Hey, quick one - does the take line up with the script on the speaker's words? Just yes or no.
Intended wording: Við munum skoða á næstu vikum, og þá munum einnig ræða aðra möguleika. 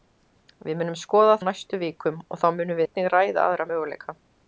yes